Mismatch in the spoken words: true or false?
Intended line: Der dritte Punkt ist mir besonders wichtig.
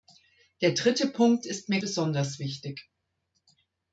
false